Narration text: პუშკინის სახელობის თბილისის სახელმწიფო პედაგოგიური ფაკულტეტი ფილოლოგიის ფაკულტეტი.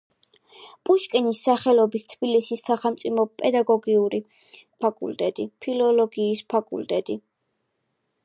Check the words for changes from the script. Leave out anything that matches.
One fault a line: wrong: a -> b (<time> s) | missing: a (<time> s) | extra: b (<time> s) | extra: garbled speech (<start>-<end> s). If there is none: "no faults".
no faults